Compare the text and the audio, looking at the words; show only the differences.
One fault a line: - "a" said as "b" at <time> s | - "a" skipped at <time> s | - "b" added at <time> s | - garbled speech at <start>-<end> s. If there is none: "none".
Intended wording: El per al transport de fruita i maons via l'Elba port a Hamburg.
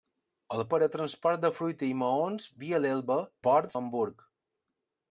none